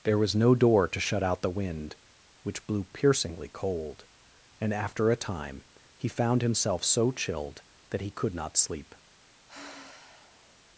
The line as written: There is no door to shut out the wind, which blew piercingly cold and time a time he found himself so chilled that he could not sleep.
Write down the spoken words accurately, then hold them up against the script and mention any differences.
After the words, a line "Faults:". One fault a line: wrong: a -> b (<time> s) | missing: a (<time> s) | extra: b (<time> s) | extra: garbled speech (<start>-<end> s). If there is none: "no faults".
There was no door to shut out the wind, which blew piercingly cold and after a time he found himself so chilled that he could not sleep.
Faults:
wrong: is -> was (0.2 s)
wrong: time -> after (4.7 s)